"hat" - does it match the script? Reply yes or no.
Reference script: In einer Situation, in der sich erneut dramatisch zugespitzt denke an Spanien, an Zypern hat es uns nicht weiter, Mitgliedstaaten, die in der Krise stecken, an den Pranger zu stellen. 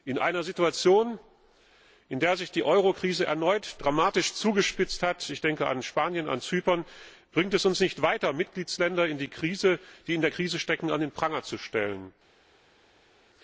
no